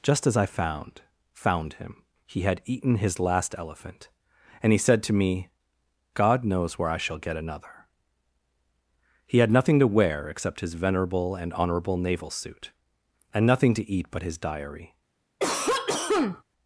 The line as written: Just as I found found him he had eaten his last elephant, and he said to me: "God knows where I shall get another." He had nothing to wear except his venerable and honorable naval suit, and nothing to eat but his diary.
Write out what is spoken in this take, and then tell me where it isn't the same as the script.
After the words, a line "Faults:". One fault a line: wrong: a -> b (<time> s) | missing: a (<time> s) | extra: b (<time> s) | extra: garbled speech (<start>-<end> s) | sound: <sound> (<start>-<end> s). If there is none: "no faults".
Just as I found found him he had eaten his last elephant, and he said to me: "God knows where I shall get another." He had nothing to wear except his venerable and honorable naval suit, and nothing to eat but his diary.
Faults:
sound: cough (15.4-16.4 s)